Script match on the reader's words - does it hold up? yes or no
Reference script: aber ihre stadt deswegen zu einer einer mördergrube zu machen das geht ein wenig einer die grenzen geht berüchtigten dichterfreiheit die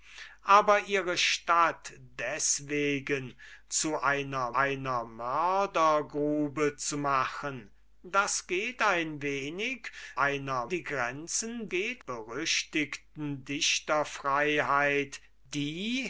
yes